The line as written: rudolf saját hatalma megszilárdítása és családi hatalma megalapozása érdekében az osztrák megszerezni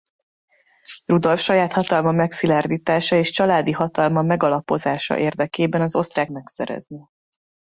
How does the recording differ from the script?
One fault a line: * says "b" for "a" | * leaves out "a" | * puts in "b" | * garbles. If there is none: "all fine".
all fine